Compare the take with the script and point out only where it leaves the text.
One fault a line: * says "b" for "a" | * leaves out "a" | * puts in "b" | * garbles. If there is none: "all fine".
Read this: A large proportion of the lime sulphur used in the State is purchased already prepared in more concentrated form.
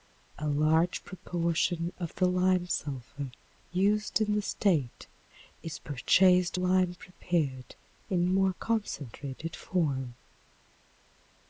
* says "lime" for "already"